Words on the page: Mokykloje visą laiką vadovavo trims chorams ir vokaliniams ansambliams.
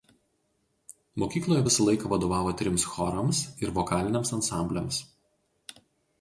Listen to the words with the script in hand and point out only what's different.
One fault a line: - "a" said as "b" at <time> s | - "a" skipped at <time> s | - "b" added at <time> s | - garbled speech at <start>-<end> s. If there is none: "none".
none